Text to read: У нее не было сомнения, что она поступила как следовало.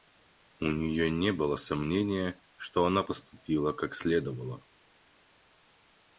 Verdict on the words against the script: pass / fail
pass